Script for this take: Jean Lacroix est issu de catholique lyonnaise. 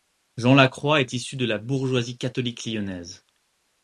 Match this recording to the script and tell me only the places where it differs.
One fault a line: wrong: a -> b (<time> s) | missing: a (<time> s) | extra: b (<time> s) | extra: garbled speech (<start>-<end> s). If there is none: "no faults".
extra: la bourgeoisie (1.4 s)